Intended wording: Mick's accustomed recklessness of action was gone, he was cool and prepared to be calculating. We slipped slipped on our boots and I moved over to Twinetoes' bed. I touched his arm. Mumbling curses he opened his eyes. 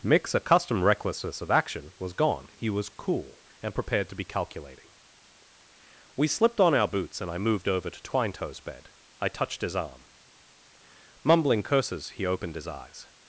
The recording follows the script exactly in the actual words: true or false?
false